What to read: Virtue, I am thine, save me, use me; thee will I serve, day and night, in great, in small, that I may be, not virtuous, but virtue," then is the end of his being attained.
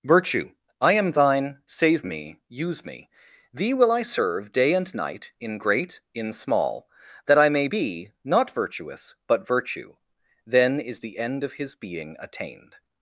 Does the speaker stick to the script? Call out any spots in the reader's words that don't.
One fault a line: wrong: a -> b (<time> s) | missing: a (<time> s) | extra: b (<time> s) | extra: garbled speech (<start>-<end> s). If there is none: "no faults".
no faults